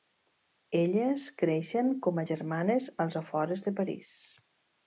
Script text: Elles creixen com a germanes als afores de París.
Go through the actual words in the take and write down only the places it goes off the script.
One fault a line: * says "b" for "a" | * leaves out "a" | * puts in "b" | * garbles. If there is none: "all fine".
all fine